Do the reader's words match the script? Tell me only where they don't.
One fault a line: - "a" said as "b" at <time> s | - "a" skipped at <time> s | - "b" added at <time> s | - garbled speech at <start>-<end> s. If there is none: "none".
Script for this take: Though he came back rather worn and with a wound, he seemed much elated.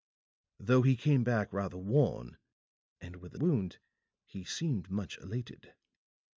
none